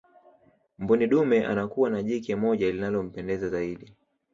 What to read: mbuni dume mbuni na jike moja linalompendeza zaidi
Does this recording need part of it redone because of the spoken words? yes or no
yes